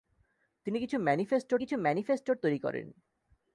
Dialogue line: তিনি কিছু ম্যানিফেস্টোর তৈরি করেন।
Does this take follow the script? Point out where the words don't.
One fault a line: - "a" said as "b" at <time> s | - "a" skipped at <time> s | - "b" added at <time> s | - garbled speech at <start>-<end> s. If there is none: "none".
- "কিছু ম্যানিফেস্টোর" added at 1.6 s